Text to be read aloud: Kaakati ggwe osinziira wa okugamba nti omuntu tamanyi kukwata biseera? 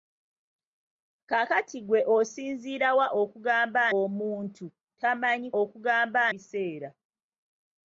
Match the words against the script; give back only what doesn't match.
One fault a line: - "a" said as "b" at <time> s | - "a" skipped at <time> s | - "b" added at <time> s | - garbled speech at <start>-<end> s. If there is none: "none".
- "nti" skipped at 3.8 s
- "kukwata" said as "okugamba" at 5.6 s